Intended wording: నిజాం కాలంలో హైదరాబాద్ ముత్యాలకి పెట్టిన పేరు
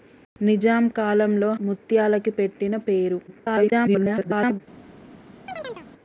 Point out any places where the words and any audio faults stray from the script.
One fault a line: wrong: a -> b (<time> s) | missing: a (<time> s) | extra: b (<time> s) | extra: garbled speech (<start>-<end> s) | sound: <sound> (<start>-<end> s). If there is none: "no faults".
missing: హైదరాబాద్ (1.5 s)
extra: garbled speech (3.3-4.6 s)
sound: chirp (5.5-5.9 s)